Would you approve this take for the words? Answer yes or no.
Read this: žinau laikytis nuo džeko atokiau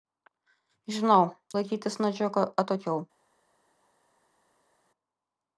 yes